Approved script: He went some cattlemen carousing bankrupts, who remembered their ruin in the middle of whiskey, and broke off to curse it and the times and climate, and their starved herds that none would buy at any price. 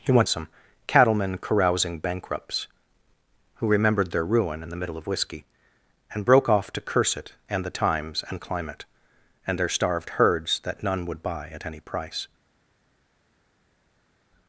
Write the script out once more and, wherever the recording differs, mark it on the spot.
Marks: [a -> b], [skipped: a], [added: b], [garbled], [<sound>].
He went some cattlemen carousing bankrupts, who remembered their ruin in the middle of whiskey, and broke off to curse it and the times and climate, and their starved herds that none would buy at any price.